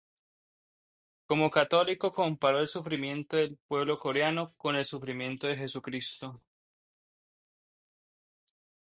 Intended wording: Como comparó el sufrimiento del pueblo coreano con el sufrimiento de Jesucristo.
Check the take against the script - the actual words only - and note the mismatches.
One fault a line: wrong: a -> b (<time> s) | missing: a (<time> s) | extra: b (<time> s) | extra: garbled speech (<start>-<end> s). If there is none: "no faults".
extra: católico (1.5 s)